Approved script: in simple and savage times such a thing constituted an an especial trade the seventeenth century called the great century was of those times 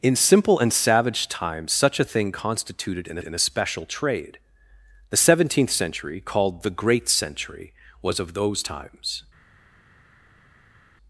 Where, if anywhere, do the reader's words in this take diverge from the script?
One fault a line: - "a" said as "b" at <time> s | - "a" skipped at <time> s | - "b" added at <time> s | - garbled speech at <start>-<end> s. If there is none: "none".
none